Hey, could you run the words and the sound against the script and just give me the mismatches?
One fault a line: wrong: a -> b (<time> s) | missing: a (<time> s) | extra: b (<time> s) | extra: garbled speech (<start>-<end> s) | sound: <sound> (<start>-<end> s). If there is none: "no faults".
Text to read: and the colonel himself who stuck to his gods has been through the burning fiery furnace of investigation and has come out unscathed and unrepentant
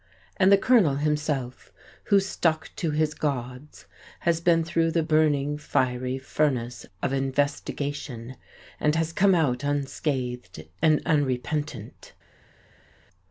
no faults